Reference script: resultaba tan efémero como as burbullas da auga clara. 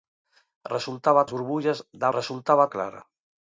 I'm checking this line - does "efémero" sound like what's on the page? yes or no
no